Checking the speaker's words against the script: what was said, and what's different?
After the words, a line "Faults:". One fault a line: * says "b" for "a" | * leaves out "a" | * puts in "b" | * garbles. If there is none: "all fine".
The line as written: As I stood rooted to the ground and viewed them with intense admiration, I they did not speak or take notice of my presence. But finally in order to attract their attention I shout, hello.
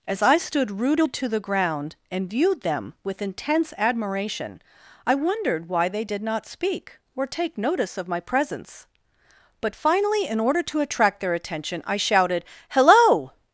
As I stood rooted to the ground and viewed them with intense admiration, I wondered why they did not speak or take notice of my presence. But finally in order to attract their attention I shouted, hello.
Faults:
* puts in "wondered why"
* says "shouted" for "shout"